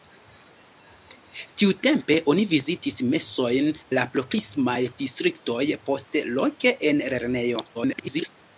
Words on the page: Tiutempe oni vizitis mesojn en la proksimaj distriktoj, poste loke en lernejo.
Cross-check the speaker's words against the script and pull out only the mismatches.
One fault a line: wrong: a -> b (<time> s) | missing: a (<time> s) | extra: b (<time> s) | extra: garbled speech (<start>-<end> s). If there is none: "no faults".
missing: en (3.7 s)
extra: garbled speech (7.7-8.3 s)